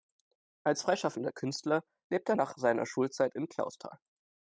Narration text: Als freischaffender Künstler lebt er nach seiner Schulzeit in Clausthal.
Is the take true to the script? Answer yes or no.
yes